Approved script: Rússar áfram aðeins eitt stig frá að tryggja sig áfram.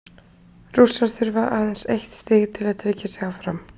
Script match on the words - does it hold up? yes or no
no